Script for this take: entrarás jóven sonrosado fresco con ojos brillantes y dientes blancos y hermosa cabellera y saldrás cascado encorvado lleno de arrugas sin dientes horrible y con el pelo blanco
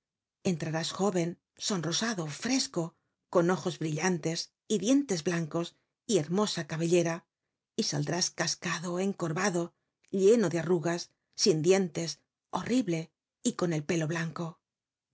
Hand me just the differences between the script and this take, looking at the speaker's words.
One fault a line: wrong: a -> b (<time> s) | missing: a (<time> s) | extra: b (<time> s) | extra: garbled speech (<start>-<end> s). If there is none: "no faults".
no faults